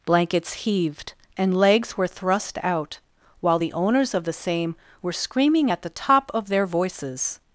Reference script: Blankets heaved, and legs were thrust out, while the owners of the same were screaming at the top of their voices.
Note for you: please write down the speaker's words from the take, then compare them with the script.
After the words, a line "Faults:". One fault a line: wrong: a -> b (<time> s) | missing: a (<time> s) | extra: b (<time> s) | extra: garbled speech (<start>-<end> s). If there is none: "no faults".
Blankets heaved, and legs were thrust out, while the owners of the same were screaming at the top of their voices.
Faults:
no faults